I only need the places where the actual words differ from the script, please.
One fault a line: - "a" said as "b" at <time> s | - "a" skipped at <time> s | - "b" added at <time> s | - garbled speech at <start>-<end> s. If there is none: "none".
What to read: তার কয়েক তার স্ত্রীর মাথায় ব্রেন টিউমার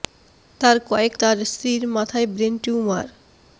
none